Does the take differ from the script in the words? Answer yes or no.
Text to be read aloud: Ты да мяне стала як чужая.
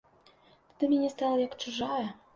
no